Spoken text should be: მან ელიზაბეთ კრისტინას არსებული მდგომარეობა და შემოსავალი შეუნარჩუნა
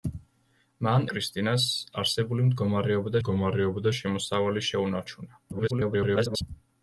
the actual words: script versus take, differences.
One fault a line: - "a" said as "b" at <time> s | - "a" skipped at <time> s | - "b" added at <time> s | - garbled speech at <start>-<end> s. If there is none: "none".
- "ელიზაბეთ" skipped at 1.1 s
- "მდგომარეობა" added at 3.2 s
- garbled speech at 5.5-6.4 s